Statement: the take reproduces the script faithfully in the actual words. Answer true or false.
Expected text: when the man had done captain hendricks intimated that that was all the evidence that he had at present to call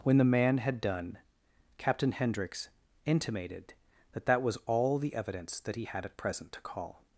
true